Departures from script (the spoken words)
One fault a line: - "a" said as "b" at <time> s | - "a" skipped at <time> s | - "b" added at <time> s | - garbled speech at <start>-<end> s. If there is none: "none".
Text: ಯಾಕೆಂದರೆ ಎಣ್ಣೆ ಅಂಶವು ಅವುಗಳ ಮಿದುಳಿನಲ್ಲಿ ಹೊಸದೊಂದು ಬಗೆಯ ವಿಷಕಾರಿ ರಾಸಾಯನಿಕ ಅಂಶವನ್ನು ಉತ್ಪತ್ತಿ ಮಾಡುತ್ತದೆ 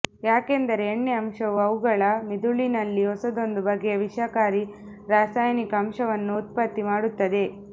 none